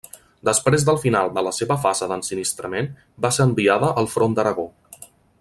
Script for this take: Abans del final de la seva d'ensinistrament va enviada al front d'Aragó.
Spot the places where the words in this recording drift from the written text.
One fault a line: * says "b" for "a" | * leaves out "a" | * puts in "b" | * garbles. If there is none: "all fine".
* says "Després" for "Abans"
* puts in "fase"
* puts in "ser"